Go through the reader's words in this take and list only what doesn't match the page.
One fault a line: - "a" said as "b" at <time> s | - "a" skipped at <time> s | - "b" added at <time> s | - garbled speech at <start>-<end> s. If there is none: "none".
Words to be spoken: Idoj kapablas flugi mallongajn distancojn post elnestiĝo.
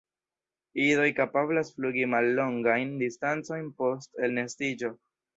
none